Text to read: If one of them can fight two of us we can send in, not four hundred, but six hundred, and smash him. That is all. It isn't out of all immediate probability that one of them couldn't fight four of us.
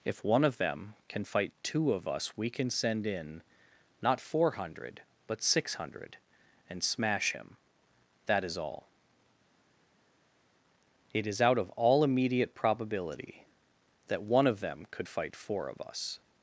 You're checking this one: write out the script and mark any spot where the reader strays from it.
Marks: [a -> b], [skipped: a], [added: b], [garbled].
If one of them can fight two of us we can send in, not four hundred, but six hundred, and smash him. That is all. It [isn't -> is] out of all immediate probability that one of them [couldn't -> could] fight four of us.